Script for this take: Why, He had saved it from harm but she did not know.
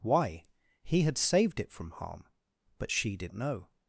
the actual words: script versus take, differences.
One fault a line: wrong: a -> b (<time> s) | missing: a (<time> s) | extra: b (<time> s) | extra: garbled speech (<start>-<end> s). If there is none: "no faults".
missing: not (3.3 s)